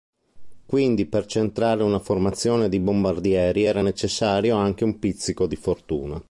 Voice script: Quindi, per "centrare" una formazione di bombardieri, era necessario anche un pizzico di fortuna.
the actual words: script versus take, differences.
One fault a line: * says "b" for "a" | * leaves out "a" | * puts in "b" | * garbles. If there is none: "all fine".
all fine